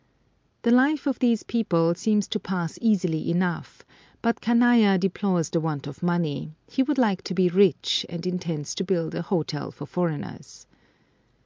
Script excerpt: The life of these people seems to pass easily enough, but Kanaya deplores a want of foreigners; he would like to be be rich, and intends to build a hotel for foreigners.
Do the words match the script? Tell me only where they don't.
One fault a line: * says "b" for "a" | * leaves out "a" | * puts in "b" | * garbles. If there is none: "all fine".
* says "the" for "a"
* says "money" for "foreigners"
* leaves out "be"